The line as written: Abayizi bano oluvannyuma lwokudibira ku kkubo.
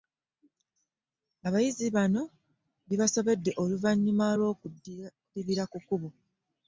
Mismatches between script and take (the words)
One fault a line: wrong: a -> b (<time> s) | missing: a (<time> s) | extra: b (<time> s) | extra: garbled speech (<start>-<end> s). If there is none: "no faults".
extra: bibasobedde (2.9 s)